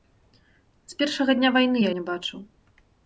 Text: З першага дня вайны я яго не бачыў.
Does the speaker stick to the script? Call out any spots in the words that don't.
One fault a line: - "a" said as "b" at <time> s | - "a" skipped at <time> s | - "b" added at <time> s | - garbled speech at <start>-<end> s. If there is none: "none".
- "яго" skipped at 1.9 s